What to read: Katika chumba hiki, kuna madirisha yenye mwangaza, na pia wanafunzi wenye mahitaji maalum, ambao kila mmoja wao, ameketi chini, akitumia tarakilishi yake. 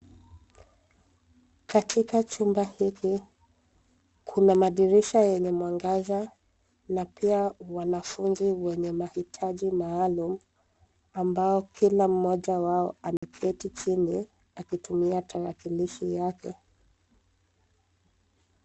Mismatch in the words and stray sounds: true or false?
true